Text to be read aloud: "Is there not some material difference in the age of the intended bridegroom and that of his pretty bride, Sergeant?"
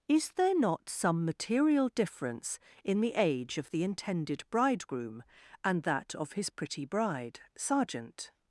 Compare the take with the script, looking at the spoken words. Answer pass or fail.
pass